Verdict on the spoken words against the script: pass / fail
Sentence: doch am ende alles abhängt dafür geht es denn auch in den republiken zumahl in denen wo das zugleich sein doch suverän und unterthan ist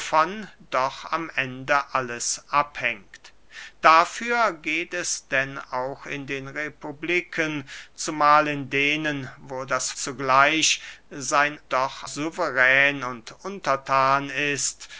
pass